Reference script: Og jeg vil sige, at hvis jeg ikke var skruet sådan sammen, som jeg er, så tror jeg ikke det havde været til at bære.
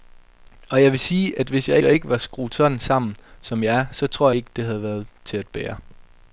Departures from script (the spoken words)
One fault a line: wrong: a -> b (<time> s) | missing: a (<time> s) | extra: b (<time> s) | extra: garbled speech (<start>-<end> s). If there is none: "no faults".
extra: jeg (1.8 s)
missing: jeg (4.3 s)